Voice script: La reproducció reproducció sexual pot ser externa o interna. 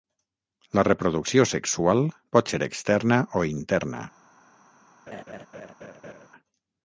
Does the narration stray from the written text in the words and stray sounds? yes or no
yes